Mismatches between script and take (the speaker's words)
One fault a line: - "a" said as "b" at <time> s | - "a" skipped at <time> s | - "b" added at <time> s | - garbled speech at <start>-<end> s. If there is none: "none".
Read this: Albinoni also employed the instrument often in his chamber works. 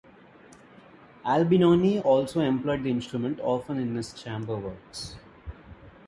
none